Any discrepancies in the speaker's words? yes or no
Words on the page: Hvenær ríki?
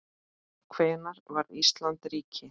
yes